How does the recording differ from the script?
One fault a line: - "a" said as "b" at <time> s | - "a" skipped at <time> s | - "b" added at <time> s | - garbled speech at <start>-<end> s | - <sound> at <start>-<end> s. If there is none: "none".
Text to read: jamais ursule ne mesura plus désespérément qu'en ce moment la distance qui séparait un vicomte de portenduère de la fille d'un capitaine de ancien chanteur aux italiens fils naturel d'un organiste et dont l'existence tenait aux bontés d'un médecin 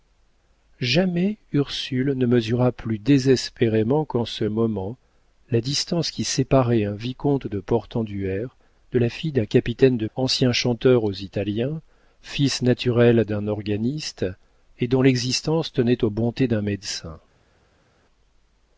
none